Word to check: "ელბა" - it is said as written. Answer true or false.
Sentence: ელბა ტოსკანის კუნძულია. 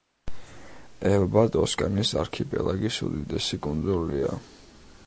true